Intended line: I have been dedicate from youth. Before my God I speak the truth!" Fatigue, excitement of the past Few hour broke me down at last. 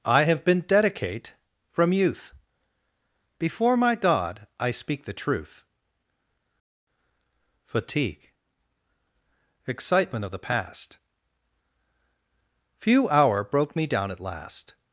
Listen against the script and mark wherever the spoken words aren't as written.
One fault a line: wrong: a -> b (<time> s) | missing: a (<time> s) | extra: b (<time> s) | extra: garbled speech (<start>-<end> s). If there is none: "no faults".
no faults